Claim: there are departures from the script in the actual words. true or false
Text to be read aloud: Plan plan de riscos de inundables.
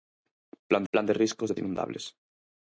false